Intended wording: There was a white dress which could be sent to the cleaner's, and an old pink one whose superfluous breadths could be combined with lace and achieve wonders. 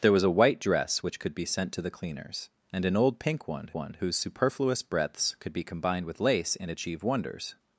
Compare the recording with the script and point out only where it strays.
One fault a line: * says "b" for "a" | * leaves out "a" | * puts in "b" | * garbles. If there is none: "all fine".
* puts in "one"